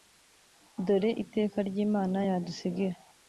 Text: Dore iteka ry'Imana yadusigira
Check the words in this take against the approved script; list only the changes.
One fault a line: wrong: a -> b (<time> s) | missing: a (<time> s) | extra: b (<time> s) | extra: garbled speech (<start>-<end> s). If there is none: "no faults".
no faults